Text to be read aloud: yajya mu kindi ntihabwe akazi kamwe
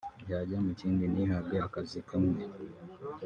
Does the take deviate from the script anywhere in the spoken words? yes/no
no